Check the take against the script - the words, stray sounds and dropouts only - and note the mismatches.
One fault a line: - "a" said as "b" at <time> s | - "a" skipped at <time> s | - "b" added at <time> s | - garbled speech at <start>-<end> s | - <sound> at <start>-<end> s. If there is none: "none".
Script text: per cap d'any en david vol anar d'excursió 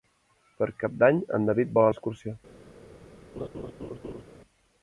- "anar" skipped at 1.9 s
- laugh at 3.4-4.2 s